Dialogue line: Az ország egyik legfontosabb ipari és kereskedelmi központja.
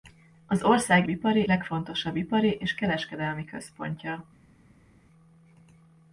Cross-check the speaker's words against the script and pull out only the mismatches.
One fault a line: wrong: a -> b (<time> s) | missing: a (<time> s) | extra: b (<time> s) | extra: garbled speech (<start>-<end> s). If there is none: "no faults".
wrong: egyik -> ipari (1.1 s)